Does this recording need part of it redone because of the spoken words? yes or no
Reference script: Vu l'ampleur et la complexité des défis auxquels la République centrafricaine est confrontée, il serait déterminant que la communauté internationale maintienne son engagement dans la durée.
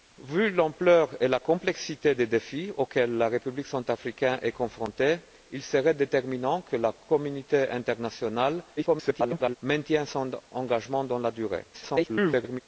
yes